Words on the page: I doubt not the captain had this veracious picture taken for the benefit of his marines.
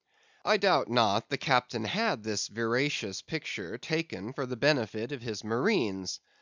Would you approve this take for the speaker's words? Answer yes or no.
yes